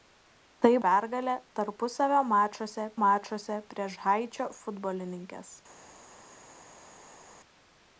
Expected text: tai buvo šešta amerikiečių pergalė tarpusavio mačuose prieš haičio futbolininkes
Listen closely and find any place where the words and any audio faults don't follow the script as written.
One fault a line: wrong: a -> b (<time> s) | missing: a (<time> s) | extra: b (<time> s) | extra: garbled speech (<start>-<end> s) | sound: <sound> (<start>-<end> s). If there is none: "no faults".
missing: buvo šešta amerikiečių (0.7 s)
extra: mačuose (3.0 s)